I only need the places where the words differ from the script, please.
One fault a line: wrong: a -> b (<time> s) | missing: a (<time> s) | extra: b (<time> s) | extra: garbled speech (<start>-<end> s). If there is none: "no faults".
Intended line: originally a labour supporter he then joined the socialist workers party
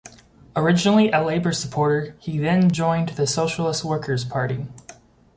no faults